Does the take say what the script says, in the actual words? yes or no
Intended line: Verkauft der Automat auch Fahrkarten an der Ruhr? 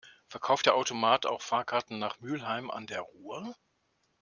no